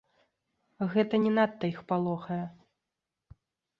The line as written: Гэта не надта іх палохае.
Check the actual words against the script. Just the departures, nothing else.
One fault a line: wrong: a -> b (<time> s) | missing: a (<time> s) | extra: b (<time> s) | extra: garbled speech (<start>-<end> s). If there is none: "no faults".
no faults